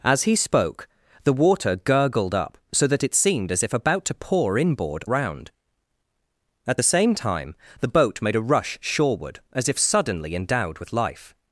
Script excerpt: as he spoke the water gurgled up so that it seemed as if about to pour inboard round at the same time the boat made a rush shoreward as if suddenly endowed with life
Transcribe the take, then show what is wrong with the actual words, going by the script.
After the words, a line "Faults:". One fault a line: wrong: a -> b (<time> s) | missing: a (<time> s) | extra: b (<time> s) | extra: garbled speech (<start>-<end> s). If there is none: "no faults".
as he spoke the water gurgled up so that it seemed as if about to pour inboard round at the same time the boat made a rush shoreward as if suddenly endowed with life
Faults:
no faults